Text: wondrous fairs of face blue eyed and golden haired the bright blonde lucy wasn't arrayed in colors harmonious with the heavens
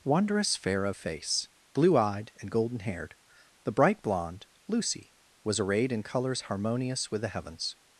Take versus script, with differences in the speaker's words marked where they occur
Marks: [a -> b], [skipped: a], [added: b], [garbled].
wondrous [fairs -> fair] of face blue eyed and golden haired the bright blonde lucy [wasn't -> was] arrayed in colors harmonious with the heavens